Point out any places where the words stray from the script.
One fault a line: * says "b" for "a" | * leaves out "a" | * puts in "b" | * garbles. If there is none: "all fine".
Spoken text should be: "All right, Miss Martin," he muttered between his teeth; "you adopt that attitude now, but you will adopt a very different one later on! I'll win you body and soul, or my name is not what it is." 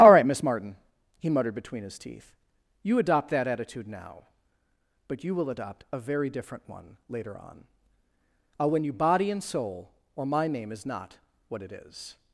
all fine